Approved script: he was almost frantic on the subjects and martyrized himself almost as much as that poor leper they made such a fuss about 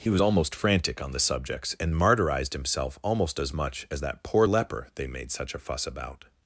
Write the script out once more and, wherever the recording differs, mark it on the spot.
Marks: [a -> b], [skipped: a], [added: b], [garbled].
he was almost frantic on the subjects and martyrized himself almost as much as that poor leper they made such a fuss about